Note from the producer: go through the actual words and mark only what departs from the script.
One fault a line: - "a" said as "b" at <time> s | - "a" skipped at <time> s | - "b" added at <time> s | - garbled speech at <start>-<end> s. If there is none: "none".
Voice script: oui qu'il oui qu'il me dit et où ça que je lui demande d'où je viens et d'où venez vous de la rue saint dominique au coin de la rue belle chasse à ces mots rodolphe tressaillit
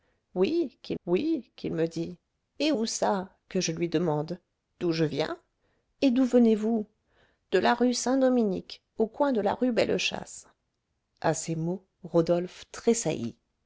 none